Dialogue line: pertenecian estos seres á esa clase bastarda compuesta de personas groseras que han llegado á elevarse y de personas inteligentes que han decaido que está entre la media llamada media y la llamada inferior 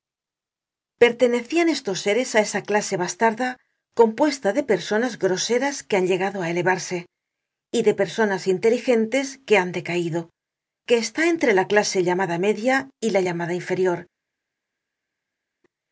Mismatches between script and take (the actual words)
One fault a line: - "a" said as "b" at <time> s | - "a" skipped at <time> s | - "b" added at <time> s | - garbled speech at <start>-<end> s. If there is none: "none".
- "media" said as "clase" at 11.7 s